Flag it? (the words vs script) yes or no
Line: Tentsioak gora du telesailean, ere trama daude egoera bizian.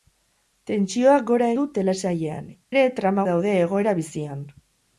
no